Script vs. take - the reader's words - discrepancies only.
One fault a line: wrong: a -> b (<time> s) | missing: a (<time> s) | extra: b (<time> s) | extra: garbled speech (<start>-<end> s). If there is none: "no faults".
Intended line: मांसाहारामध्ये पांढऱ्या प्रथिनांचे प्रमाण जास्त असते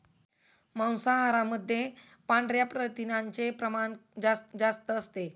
extra: जास्त (4.6 s)